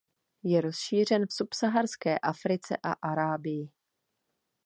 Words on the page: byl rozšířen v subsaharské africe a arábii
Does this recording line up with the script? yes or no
no